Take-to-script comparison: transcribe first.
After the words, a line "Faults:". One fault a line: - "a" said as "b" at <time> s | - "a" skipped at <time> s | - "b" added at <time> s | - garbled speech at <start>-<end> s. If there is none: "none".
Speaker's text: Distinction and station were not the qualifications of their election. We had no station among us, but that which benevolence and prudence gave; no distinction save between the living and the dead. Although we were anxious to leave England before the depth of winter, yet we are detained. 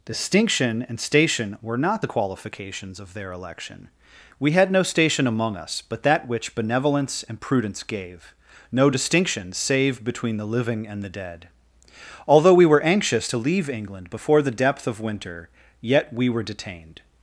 Distinction and station were not the qualifications of their election. We had no station among us, but that which benevolence and prudence gave; no distinction save between the living and the dead. Although we were anxious to leave England before the depth of winter, yet we were detained.
Faults:
- "are" said as "were" at 16.3 s